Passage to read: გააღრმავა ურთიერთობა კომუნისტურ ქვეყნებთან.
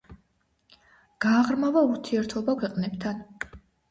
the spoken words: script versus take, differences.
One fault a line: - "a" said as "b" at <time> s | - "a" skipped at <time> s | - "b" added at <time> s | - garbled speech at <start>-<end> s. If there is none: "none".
- "კომუნისტურ" skipped at 2.5 s